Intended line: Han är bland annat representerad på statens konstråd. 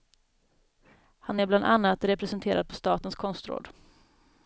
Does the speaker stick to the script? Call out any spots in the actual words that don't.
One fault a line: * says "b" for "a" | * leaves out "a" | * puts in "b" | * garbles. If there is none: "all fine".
all fine